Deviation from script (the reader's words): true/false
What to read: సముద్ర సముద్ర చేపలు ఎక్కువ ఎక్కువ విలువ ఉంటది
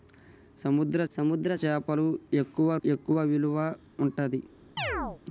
false